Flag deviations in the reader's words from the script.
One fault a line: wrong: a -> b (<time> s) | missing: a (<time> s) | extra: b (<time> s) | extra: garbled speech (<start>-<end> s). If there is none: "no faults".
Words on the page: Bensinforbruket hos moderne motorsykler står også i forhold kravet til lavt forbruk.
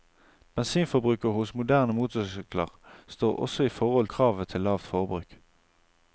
no faults